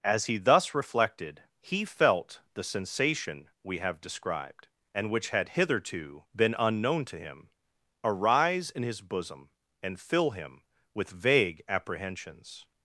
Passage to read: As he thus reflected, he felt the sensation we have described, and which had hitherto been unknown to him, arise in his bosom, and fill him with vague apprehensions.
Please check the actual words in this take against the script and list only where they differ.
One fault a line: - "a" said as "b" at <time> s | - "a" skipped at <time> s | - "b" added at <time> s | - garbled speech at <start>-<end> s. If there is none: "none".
none